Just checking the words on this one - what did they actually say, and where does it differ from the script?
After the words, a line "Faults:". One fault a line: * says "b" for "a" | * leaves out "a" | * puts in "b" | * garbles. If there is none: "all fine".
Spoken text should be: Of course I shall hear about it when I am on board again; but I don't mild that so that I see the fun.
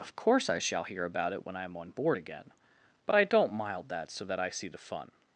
Of course I shall hear about it when I am on board again; but I don't mild that so that I see the fun.
Faults:
all fine